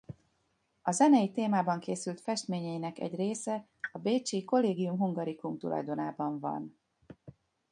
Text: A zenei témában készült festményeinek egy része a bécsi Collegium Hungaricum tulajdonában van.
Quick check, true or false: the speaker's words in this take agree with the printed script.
true